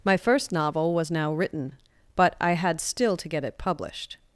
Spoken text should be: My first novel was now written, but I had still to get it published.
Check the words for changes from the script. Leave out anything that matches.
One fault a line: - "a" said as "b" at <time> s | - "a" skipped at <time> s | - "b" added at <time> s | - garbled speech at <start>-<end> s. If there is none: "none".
none